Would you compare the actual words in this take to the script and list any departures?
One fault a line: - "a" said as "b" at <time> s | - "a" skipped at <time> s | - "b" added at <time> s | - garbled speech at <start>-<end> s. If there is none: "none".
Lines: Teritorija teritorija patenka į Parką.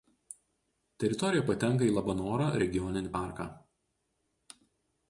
- "teritorija" skipped at 1.4 s
- "Labanoro regioninį" added at 2.0 s